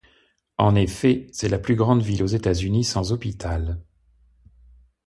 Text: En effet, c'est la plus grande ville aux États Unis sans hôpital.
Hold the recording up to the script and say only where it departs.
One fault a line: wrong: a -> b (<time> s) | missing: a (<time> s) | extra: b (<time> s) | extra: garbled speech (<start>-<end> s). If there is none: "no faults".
no faults